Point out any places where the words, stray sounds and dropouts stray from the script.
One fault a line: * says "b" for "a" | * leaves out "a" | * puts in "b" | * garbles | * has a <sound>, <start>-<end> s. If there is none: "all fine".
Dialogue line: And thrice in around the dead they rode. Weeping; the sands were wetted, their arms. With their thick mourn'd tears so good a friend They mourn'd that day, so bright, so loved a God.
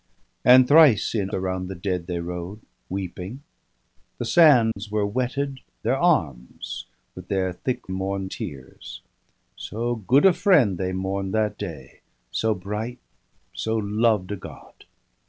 * has a dropout, 4.7-4.8 s